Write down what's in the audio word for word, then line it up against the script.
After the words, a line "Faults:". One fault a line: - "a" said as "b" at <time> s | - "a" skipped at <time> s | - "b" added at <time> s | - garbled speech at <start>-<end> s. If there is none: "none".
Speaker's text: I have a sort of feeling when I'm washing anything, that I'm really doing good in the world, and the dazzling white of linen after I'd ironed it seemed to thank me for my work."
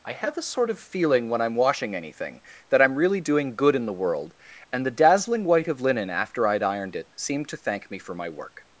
I have a sort of feeling when I'm washing anything, that I'm really doing good in the world, and the dazzling white of linen after I'd ironed it seemed to thank me for my work."
Faults:
none